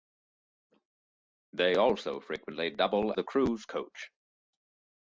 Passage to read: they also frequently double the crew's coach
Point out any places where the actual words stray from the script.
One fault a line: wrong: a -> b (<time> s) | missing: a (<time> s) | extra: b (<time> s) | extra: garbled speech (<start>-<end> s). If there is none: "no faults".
no faults